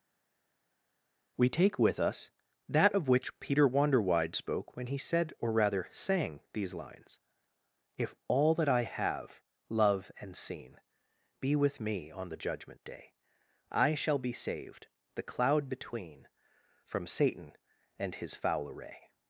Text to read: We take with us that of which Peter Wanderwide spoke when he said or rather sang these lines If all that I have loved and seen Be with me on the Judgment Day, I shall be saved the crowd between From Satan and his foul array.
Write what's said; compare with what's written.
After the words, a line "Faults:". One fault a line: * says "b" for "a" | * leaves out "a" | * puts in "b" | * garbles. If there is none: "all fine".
We take with us that of which Peter Wanderwide spoke when he said or rather sang these lines If all that I have love and seen Be with me on the Judgment Day, I shall be saved the cloud between From Satan and his foul array.
Faults:
* says "love" for "loved"
* says "cloud" for "crowd"